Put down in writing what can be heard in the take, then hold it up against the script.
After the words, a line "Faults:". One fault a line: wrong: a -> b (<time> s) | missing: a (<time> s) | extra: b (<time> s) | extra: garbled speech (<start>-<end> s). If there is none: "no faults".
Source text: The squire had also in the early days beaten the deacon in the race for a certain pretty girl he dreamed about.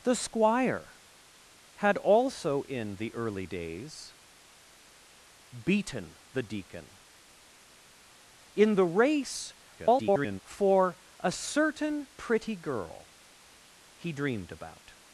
The squire had also in the early days beaten the deacon in the race [garbled] for a certain pretty girl he dreamed about.
Faults:
extra: garbled speech (9.8-10.4 s)